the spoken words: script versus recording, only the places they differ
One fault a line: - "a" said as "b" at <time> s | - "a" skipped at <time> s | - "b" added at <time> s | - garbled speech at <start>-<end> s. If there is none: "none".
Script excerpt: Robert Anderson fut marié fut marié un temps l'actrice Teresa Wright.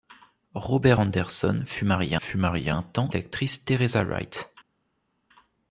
none